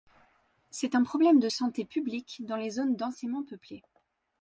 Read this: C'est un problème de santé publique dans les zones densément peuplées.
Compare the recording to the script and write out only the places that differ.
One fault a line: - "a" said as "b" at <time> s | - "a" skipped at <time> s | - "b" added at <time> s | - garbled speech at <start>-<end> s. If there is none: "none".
none